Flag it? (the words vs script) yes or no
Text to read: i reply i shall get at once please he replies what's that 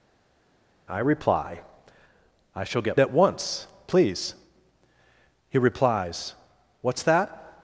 no